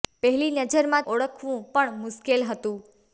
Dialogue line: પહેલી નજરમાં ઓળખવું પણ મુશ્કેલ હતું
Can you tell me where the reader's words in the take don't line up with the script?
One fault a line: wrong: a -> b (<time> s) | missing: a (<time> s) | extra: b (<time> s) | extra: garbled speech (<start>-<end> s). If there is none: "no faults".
no faults